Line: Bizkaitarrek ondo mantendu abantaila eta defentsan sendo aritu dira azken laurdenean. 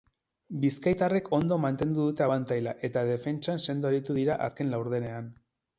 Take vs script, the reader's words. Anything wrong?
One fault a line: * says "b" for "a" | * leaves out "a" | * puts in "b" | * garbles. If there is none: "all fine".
* puts in "dute"